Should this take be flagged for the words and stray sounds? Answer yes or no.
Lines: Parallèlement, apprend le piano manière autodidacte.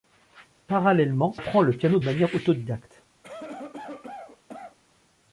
yes